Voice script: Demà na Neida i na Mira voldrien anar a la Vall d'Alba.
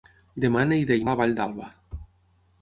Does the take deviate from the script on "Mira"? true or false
true